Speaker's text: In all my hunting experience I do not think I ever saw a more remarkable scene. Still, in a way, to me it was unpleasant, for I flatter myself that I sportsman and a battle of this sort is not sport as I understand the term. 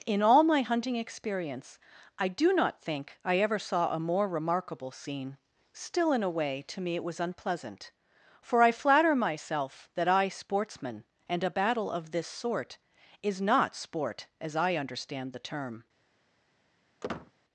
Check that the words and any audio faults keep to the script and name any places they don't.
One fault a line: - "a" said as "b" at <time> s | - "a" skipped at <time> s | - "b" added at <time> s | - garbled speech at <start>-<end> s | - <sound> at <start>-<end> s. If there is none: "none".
- squeak at 17.0-17.3 s